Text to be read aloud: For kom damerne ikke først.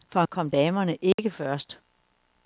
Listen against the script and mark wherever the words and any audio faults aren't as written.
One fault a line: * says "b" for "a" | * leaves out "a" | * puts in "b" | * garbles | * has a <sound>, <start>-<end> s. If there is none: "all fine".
* has a dropout, 1.1-1.2 s